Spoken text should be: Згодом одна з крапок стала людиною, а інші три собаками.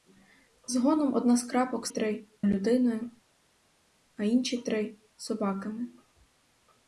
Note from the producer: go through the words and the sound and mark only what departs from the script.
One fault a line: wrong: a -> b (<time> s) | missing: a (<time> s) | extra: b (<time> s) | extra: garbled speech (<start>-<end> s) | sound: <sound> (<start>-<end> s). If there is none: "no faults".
wrong: стала -> три (1.9 s)